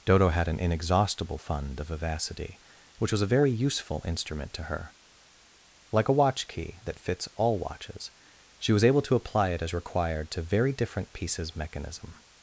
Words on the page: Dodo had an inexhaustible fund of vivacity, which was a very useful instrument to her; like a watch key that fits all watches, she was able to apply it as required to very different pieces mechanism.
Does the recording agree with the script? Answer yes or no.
yes